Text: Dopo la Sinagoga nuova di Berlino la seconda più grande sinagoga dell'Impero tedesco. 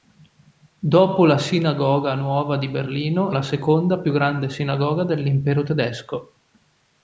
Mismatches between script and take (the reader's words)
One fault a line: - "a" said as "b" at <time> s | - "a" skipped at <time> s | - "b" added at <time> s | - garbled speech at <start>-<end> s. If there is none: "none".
none